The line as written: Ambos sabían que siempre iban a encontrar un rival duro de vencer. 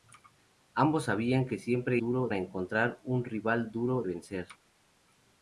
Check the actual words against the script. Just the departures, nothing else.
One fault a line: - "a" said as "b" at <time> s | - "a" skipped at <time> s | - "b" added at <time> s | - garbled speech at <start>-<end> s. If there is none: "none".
- "iban" said as "duro" at 2.0 s
- "de" skipped at 4.0 s